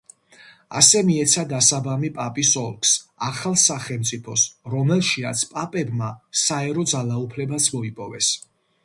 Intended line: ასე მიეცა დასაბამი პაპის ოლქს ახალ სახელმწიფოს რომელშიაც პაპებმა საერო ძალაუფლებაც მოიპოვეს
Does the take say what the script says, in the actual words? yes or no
yes